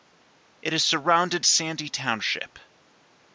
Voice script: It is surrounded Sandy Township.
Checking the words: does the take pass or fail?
pass